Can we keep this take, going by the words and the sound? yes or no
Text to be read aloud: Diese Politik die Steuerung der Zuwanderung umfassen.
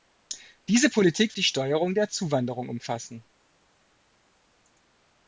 yes